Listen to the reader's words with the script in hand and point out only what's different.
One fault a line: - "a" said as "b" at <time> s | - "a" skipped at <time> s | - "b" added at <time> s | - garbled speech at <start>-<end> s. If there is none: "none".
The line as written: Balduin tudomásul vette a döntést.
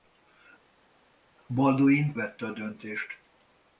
- "tudomásul" skipped at 2.1 s